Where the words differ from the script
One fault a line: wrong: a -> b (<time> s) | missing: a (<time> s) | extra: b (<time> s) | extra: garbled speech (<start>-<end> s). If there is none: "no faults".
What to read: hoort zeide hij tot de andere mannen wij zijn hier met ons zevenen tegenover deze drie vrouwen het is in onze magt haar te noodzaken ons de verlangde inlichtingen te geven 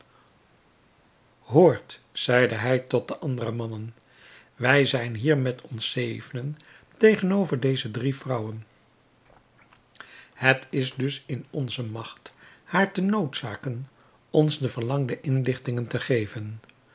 extra: dus (10.9 s)